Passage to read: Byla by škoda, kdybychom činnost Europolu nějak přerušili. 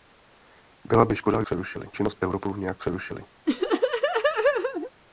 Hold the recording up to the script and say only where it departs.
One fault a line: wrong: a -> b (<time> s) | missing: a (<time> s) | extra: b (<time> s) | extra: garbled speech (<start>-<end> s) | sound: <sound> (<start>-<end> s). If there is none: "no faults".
wrong: kdybychom -> přerušili (1.4 s)
sound: laugh (3.5-4.9 s)